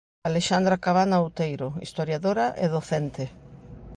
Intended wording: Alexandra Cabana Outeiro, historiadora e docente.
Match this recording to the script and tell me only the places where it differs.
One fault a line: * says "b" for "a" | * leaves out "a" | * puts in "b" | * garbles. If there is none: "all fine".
all fine